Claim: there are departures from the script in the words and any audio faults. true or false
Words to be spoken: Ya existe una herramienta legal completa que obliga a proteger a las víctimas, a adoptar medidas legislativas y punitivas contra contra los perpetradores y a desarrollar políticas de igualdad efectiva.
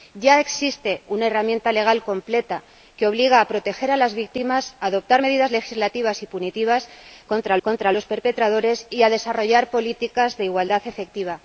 false